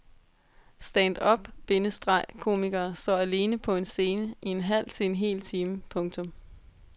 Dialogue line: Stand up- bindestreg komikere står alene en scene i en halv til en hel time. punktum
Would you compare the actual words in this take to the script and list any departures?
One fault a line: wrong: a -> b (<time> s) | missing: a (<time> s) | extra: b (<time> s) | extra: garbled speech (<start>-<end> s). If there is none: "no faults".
extra: på (3.6 s)